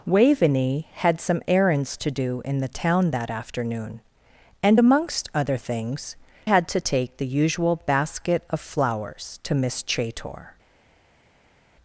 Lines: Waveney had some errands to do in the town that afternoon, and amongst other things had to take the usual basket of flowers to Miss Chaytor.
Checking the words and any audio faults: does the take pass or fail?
pass